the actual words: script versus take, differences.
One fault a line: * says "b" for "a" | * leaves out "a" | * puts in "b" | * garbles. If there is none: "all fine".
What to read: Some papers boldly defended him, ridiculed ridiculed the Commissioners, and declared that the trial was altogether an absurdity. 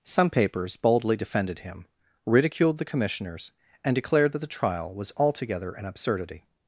* leaves out "ridiculed"